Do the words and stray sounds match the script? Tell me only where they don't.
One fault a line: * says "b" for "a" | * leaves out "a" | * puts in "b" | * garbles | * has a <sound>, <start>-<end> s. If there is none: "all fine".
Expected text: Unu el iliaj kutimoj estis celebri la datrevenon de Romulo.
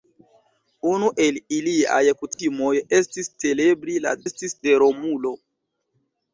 * has a dropout, 2.3-2.4 s
* says "estis" for "datrevenon"